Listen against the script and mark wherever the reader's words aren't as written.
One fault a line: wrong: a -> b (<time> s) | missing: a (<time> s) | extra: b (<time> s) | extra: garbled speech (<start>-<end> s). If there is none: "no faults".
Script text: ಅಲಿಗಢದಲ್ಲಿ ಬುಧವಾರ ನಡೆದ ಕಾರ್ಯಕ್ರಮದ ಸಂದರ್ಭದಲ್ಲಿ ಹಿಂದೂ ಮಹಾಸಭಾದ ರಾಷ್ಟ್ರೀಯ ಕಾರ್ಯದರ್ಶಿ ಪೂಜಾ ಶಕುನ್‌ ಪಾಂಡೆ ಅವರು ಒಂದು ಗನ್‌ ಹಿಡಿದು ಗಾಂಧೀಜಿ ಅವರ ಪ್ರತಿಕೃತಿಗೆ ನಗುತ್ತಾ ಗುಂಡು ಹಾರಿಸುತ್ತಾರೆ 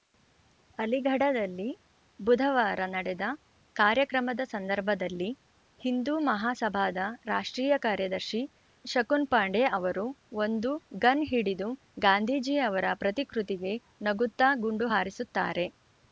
missing: ಪೂಜಾ (8.4 s)